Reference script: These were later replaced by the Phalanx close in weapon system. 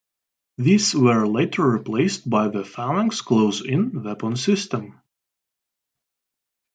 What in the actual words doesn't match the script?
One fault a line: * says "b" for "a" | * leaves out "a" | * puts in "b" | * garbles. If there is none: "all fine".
all fine